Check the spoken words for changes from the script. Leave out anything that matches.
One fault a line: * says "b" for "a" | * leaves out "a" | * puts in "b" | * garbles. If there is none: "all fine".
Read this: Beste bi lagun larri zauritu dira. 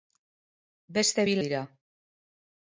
* leaves out "lagun larri zauritu"